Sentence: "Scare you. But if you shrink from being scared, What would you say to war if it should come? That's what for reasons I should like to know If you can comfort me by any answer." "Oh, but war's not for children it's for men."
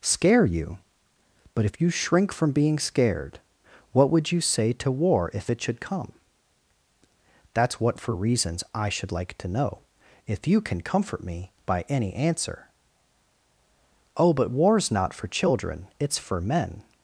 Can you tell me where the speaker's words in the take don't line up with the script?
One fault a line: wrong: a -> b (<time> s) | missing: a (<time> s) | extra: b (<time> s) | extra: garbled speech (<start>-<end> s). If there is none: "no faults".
no faults